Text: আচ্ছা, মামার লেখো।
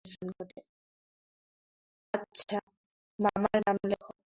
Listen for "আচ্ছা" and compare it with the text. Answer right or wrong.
right